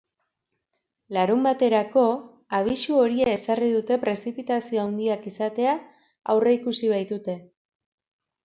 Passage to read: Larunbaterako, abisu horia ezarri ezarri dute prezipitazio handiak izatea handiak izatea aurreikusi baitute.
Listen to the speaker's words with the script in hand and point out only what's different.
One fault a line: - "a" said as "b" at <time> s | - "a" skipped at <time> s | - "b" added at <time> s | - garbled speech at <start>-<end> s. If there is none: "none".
- "ezarri" skipped at 3.7 s
- "handiak izatea" skipped at 5.8 s